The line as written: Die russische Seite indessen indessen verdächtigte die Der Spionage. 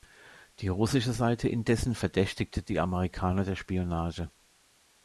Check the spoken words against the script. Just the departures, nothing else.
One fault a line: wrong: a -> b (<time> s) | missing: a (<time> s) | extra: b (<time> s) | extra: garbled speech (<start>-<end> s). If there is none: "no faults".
missing: indessen (1.9 s)
extra: Amerikaner (2.8 s)